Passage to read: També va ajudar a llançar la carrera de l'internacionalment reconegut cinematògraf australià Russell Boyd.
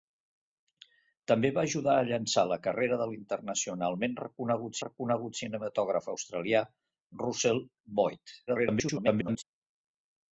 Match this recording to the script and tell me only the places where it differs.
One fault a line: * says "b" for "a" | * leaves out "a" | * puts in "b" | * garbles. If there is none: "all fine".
* puts in "reconegut"
* garbles